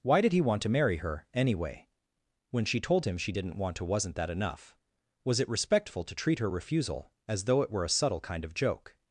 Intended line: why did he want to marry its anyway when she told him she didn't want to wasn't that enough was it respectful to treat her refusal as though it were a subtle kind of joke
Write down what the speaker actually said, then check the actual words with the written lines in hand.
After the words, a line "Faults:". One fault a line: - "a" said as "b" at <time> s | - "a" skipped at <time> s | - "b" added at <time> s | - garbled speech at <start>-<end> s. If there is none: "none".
why did he want to marry her anyway when she told him she didn't want to wasn't that enough was it respectful to treat her refusal as though it were a subtle kind of joke
Faults:
- "its" said as "her" at 1.0 s